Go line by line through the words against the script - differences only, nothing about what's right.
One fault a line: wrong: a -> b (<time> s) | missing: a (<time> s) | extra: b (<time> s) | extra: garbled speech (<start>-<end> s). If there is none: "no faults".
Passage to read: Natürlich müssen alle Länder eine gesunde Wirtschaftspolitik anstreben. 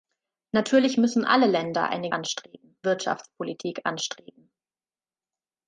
wrong: gesunde -> anstreben (2.1 s)